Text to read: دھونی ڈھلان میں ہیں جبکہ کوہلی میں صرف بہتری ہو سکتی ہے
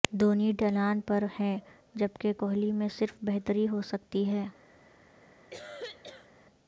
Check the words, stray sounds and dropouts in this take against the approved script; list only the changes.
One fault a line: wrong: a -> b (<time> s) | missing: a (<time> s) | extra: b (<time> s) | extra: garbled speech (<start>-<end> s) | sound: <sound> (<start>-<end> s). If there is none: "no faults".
wrong: میں -> پر (1.0 s)
sound: cough (5.5-6.3 s)